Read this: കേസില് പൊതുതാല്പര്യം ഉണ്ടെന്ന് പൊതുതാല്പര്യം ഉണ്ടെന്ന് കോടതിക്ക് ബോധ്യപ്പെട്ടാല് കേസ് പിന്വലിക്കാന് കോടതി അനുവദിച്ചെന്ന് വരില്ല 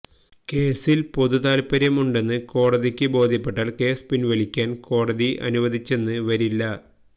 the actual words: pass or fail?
fail